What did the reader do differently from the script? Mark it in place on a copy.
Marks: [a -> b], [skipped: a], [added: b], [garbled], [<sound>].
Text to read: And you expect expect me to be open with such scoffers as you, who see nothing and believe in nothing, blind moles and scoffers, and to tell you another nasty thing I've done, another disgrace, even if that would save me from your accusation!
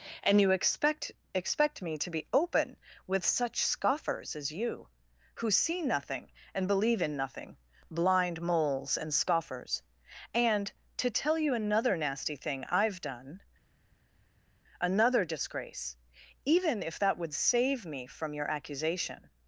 And you expect expect me to be open with such scoffers as you, who see nothing and believe in nothing, blind moles and scoffers, and to tell you another nasty thing I've done, another disgrace, even if that would save me from your accusation!